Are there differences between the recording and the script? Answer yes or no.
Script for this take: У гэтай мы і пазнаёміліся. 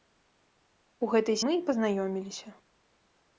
no